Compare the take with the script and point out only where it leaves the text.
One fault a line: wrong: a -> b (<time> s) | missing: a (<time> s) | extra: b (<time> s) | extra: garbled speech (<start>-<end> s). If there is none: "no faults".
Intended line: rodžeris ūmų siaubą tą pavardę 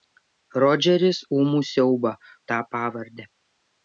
no faults